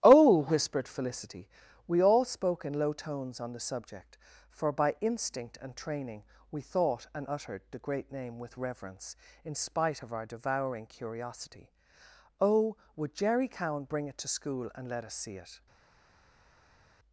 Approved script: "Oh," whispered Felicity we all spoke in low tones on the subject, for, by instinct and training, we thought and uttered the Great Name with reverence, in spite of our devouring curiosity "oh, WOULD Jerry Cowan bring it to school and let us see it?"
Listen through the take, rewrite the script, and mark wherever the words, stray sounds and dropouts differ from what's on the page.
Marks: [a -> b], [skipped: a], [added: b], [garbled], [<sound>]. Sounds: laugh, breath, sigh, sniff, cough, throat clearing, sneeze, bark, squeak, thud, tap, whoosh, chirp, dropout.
"Oh," whispered Felicity we all spoke in low tones on the subject, for, by instinct and training, we thought and uttered the Great Name with reverence, in spite of our devouring curiosity "oh, WOULD Jerry Cowan bring it to school and let us see it?"